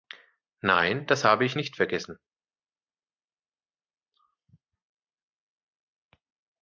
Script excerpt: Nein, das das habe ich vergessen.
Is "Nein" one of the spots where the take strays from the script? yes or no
no